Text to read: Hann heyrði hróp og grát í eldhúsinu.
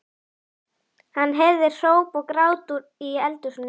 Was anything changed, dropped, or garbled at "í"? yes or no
no